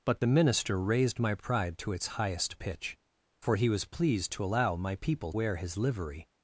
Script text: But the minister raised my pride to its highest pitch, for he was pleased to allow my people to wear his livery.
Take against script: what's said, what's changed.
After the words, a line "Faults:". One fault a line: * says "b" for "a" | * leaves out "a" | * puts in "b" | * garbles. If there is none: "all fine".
But the minister raised my pride to its highest pitch, for he was pleased to allow my people wear his livery.
Faults:
* leaves out "to"